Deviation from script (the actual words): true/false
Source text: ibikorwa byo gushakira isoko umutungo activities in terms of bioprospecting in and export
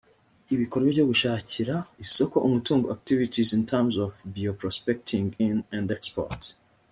false